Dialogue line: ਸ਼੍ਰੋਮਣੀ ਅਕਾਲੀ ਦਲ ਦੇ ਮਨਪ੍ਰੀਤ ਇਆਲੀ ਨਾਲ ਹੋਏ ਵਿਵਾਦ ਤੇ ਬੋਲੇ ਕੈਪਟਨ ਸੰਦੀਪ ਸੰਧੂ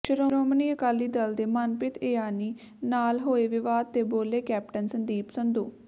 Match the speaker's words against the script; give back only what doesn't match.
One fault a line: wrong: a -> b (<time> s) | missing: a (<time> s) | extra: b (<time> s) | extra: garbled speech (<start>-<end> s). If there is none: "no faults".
no faults